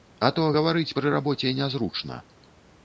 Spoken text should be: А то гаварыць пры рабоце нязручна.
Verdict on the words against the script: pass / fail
pass